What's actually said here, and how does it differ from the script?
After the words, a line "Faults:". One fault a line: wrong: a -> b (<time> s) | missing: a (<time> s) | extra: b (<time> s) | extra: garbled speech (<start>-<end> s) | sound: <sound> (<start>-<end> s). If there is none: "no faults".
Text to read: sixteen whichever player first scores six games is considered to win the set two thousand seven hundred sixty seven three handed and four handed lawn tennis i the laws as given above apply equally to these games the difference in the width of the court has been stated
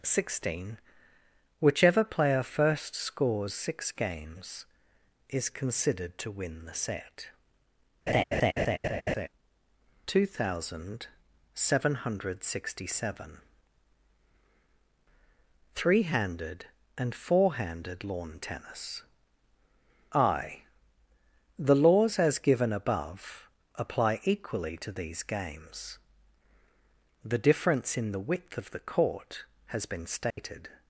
sixteen whichever player first scores six games is considered to win the set two thousand seven hundred sixty seven three handed and four handed lawn tennis i the laws as given above apply equally to these games the difference in the width of the court has been stated
Faults:
sound: laugh (8.1-9.3 s)
sound: dropout (30.3-30.4 s)